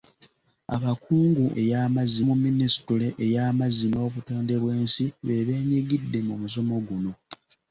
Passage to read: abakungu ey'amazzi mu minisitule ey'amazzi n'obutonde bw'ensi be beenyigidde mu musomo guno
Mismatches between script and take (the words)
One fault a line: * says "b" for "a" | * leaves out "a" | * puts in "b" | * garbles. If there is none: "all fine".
all fine